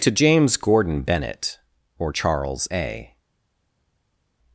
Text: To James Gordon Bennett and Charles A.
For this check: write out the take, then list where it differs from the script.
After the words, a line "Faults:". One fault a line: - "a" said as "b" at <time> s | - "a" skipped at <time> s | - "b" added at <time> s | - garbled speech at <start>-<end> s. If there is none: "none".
To James Gordon Bennett or Charles A.
Faults:
- "and" said as "or" at 2.0 s